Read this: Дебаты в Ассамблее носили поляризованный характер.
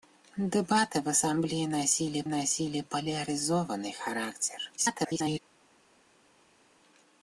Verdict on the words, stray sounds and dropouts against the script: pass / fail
fail